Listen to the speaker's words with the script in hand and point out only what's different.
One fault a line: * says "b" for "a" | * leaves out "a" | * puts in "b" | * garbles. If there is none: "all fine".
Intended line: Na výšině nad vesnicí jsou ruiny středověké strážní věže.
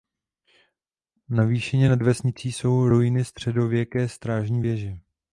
all fine